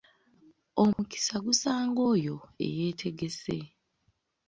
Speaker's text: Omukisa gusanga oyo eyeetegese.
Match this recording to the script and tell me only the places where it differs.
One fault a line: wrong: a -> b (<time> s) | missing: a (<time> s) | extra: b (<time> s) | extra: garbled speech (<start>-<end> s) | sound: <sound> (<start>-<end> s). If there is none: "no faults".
sound: dropout (0.9-1.0 s)